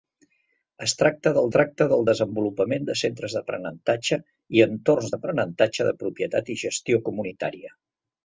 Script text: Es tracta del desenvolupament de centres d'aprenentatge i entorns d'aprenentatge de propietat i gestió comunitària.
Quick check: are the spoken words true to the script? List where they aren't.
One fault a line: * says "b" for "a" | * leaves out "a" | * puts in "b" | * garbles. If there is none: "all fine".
* puts in "tracta del"